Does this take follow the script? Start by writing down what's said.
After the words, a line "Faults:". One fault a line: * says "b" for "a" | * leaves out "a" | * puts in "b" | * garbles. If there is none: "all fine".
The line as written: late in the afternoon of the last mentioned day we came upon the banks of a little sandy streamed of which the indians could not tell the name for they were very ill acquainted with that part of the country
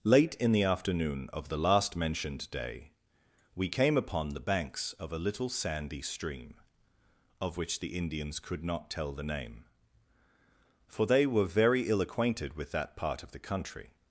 late in the afternoon of the last mentioned day we came upon the banks of a little sandy stream of which the indians could not tell the name for they were very ill acquainted with that part of the country
Faults:
* says "stream" for "streamed"